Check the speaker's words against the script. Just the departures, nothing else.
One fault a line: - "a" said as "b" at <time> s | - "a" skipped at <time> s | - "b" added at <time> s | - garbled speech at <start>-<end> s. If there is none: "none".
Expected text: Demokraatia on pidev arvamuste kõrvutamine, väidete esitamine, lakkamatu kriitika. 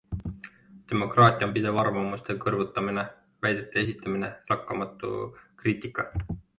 none